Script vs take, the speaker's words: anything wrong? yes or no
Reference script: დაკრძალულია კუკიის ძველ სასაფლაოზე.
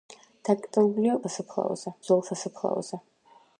yes